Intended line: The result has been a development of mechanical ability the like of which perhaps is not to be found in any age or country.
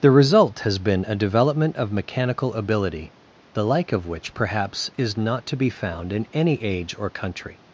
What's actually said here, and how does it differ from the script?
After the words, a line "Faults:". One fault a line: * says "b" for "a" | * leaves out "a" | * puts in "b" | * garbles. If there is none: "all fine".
The result has been a development of mechanical ability the like of which perhaps is not to be found in any age or country.
Faults:
all fine